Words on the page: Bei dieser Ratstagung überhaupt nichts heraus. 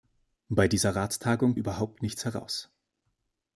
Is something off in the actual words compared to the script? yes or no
no